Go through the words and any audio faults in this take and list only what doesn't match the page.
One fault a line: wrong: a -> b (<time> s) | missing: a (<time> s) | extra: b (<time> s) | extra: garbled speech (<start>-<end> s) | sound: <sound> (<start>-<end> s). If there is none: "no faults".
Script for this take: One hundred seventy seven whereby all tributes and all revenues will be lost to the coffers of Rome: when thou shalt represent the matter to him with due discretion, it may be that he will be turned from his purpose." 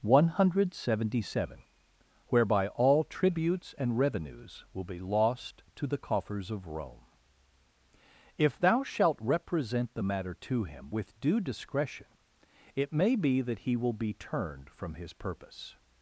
missing: all (4.0 s)
wrong: when -> if (8.3 s)